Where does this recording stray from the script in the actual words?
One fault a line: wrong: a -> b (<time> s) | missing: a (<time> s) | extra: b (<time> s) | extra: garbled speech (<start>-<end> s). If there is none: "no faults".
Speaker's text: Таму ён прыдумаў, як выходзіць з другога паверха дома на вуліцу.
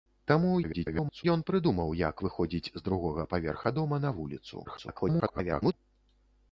extra: garbled speech (0.6-1.2 s)
extra: garbled speech (4.6-5.7 s)